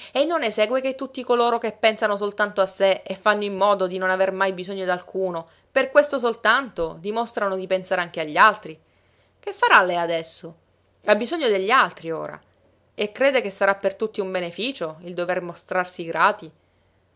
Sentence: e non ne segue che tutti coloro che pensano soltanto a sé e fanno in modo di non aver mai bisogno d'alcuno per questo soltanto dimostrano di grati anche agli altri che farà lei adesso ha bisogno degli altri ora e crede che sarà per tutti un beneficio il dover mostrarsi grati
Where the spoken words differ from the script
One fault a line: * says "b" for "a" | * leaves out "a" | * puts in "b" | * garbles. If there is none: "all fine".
* says "pensare" for "grati"